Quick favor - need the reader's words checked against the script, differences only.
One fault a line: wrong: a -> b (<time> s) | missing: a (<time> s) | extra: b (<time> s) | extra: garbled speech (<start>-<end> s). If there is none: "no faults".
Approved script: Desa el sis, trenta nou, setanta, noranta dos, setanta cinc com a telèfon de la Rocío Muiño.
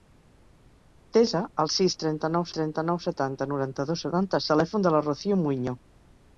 extra: trenta nou (2.6 s)
missing: cinc com (4.4 s)